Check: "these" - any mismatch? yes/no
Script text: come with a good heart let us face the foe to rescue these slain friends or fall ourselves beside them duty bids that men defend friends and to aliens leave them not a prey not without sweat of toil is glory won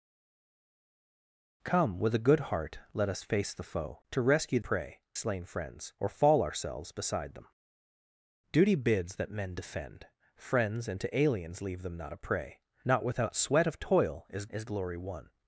yes